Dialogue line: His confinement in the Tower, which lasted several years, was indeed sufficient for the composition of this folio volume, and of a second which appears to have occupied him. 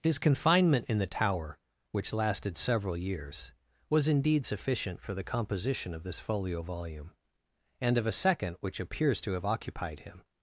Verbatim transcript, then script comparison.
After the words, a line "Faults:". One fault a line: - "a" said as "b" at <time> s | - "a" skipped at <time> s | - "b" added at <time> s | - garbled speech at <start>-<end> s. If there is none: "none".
His confinement in the Tower, which lasted several years, was indeed sufficient for the composition of this folio volume, and of a second which appears to have occupied him.
Faults:
none